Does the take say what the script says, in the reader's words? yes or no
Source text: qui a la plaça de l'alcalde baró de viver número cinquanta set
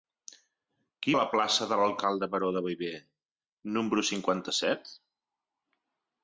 yes